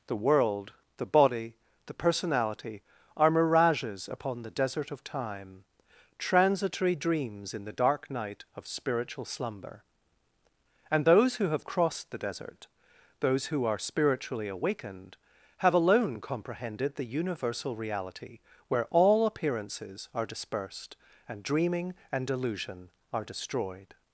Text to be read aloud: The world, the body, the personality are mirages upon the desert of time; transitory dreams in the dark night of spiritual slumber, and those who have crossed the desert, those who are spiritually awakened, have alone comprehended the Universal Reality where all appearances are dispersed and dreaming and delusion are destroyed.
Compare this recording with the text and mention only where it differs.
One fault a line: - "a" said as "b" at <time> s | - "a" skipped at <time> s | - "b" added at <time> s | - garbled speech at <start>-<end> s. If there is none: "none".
none